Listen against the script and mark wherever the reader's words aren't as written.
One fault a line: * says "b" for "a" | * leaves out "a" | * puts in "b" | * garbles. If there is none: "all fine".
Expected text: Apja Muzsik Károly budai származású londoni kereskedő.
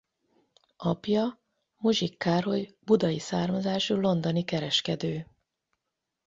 all fine